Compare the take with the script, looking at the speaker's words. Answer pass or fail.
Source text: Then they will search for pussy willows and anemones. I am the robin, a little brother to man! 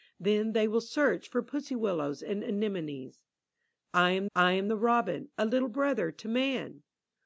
fail